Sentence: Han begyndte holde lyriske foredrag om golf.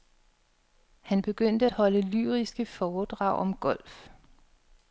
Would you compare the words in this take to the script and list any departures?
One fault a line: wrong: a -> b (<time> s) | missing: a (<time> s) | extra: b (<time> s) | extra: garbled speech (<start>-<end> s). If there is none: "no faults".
no faults